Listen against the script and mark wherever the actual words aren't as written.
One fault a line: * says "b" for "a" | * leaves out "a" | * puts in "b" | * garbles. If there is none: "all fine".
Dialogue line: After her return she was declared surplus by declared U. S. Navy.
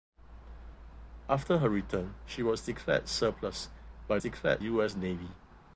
all fine